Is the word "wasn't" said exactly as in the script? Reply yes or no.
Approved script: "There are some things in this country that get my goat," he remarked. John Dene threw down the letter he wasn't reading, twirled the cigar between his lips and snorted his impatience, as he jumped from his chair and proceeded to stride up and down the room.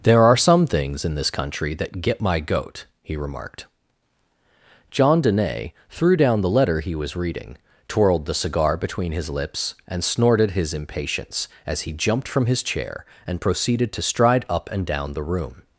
no